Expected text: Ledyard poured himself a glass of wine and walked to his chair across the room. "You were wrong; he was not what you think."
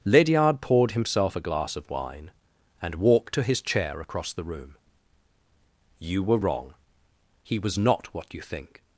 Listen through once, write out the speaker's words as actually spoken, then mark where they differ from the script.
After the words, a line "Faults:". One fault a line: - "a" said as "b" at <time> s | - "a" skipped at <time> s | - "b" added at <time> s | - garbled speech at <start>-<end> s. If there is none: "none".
Ledyard poured himself a glass of wine and walked to his chair across the room. "You were wrong; he was not what you think."
Faults:
none